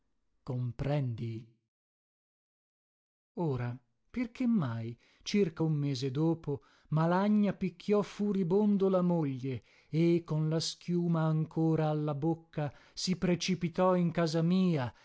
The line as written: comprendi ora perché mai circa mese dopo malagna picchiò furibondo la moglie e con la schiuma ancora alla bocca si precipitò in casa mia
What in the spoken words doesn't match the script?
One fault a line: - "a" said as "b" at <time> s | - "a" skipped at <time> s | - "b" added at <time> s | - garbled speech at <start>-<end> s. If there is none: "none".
- "un" added at 5.6 s